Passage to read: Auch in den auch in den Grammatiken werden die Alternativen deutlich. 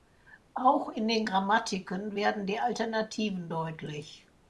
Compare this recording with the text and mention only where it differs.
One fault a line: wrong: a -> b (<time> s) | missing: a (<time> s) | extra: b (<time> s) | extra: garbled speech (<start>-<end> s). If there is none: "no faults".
missing: auch in den (1.3 s)